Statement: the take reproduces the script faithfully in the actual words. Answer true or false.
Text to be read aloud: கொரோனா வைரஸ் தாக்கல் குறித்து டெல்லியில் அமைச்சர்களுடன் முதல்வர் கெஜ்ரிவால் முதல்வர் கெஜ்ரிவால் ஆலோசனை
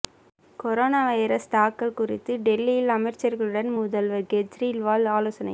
false